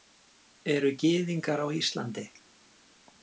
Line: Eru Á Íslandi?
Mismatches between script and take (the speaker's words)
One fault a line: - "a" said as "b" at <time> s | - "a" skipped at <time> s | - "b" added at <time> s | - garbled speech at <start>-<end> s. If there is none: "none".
- "Gyðingar" added at 1.0 s